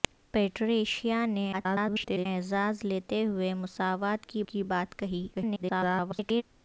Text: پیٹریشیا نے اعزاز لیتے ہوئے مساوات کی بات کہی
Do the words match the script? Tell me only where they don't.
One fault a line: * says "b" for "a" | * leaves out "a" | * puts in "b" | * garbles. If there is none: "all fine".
* garbles
* puts in "کی"
* garbles